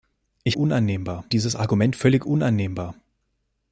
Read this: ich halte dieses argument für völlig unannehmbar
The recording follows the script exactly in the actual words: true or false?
false